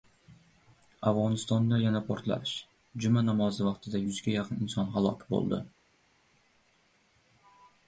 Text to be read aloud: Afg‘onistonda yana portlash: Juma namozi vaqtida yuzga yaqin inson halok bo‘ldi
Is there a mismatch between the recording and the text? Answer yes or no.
no